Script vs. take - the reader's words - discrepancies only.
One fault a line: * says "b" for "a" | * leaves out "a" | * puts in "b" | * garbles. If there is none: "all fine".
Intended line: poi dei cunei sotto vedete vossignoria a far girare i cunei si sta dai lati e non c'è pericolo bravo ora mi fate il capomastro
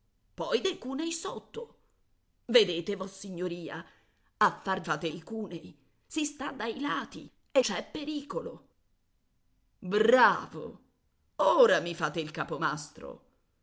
* says "fate" for "girare"
* leaves out "non"